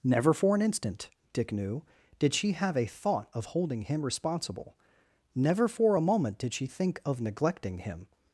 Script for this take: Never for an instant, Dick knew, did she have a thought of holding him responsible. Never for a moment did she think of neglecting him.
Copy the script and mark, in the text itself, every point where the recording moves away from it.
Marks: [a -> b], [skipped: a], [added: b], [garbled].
Never for an instant, Dick knew, did she have a thought of holding him responsible. Never for a moment did she think of neglecting him.